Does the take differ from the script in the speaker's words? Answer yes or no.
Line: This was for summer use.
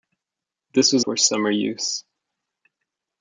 no